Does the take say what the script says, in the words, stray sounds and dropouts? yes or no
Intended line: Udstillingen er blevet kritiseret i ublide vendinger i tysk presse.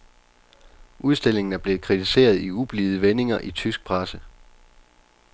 yes